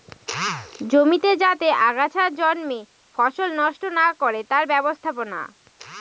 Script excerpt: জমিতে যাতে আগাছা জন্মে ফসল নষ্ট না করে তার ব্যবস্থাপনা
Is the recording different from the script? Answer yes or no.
no